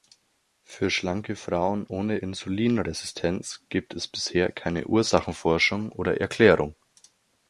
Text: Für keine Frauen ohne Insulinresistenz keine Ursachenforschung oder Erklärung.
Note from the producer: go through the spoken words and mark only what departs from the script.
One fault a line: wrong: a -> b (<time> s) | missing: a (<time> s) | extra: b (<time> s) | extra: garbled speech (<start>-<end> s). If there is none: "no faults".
wrong: keine -> schlanke (0.9 s)
extra: gibt es bisher (3.7 s)